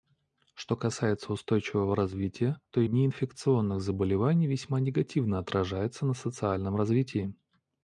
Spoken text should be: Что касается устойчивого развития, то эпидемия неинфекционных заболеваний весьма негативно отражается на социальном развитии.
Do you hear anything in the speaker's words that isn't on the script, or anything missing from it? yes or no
yes